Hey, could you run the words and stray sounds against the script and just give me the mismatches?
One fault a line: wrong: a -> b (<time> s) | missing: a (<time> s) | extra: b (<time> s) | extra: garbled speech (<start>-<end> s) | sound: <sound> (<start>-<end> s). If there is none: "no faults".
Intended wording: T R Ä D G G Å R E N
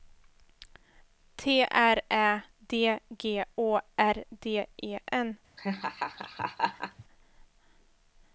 missing: G (3.5 s)
extra: D (4.4 s)
sound: laugh (5.6-7.0 s)